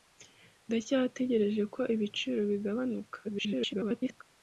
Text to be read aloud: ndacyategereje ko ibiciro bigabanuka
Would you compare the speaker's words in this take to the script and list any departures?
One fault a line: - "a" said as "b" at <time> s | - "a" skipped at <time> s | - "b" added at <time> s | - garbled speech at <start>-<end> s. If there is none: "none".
- garbled speech at 3.2-4.2 s